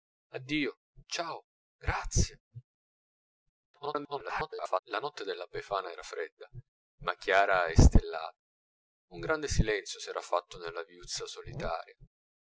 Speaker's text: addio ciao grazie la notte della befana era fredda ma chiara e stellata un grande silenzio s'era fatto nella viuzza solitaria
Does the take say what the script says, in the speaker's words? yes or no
no